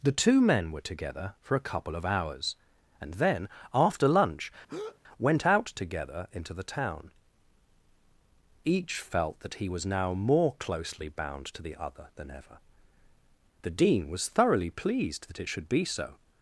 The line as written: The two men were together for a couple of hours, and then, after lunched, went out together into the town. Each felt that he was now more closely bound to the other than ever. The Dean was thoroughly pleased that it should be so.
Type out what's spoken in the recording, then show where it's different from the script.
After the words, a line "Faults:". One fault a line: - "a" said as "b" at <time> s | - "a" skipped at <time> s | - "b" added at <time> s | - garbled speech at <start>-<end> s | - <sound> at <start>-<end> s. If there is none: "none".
The two men were together for a couple of hours, and then, after lunch, went out together into the town. Each felt that he was now more closely bound to the other than ever. The Dean was thoroughly pleased that it should be so.
Faults:
- "lunched" said as "lunch" at 4.1 s
- breath at 4.7-5.0 s